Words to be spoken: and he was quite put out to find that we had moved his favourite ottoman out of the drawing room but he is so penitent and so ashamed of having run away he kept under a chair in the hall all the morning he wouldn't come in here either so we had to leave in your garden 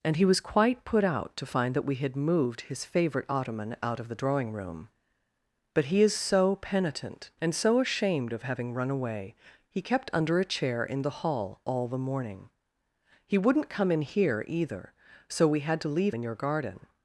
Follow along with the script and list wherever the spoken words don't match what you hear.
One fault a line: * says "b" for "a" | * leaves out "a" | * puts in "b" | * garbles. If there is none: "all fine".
all fine